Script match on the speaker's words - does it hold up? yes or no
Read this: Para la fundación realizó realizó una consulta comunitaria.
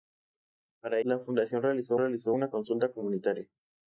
yes